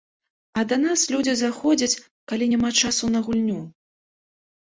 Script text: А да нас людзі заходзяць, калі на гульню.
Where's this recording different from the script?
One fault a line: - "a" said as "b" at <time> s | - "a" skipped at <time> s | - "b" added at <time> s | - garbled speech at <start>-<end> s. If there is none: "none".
- "няма часу" added at 2.5 s